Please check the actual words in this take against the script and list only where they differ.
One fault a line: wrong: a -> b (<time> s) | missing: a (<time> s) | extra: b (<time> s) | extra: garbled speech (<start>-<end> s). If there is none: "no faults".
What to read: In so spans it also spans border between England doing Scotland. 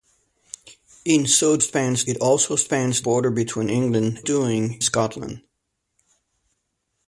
no faults